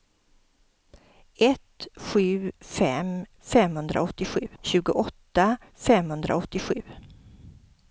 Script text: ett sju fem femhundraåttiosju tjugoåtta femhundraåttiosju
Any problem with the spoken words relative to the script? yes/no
no